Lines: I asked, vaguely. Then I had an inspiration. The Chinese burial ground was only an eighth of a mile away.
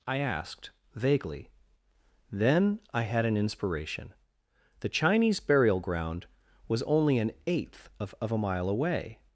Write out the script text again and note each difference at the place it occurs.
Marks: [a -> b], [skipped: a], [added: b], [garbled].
I asked, vaguely. Then I had an inspiration. The Chinese burial ground was only an eighth of [added: of] a mile away.